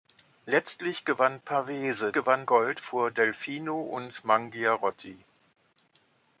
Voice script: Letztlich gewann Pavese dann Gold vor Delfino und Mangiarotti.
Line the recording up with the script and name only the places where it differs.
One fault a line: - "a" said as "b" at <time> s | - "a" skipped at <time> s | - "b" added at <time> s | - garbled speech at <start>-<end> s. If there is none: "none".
- "dann" said as "gewann" at 2.1 s